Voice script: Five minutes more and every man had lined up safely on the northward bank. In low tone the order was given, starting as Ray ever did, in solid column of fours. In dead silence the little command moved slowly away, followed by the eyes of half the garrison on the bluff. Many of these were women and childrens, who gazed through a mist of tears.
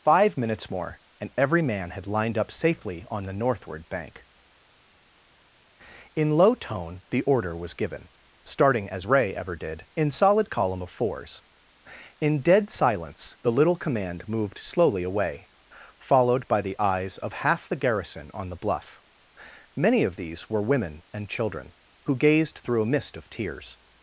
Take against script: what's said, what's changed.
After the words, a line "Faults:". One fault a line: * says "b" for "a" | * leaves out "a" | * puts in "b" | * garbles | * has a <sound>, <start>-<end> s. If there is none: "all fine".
Five minutes more and every man had lined up safely on the northward bank. In low tone the order was given, starting as Ray ever did, in solid column of fours. In dead silence the little command moved slowly away, followed by the eyes of half the garrison on the bluff. Many of these were women and children, who gazed through a mist of tears.
Faults:
* says "children" for "childrens"